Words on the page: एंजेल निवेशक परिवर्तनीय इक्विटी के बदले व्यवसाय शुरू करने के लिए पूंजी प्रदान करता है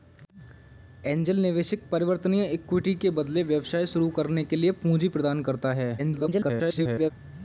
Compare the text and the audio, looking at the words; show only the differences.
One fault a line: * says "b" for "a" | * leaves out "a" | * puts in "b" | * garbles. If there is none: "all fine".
* garbles